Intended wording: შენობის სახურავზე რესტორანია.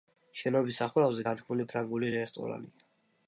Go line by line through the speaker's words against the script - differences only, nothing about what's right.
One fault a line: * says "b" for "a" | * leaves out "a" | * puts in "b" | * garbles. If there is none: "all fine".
* puts in "განთქმული ფრანგული"